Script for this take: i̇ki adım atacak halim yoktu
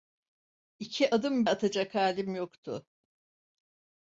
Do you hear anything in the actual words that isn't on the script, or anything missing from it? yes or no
no